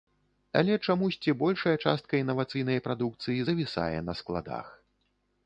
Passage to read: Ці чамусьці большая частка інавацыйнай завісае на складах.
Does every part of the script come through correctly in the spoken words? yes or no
no